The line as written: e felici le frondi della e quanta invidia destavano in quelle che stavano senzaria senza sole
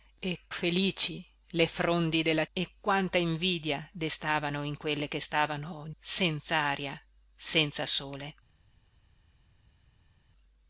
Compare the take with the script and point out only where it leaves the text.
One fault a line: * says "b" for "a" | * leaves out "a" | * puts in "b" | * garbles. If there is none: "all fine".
all fine